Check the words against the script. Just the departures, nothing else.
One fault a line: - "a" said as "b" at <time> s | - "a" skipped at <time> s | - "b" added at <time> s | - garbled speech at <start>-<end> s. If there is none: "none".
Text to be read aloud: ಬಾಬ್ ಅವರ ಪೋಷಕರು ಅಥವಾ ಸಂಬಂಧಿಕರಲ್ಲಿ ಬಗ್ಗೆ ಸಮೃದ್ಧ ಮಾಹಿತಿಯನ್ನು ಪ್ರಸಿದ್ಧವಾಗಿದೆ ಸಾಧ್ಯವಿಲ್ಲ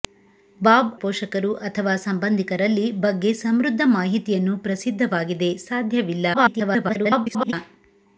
- "ಅವರ" skipped at 0.9 s
- garbled speech at 6.3-7.5 s